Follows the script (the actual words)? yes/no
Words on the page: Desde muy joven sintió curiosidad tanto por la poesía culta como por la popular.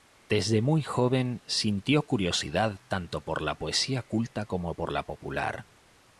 yes